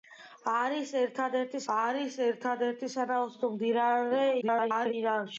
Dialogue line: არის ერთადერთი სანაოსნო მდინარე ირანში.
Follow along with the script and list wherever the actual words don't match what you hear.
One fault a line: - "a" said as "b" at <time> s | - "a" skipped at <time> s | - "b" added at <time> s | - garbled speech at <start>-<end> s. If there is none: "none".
- "არის ერთადერთი" added at 1.8 s
- garbled speech at 4.4-4.9 s